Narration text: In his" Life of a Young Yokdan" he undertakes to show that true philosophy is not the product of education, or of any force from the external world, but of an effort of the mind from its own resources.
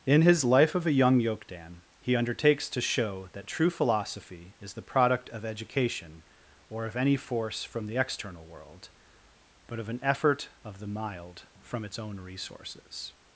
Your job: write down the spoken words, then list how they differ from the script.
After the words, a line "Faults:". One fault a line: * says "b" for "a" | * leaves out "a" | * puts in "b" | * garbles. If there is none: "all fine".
In his" Life of a Young Yokdan" he undertakes to show that true philosophy is the product of education, or of any force from the external world, but of an effort of the mild from its own resources.
Faults:
* leaves out "not"
* says "mild" for "mind"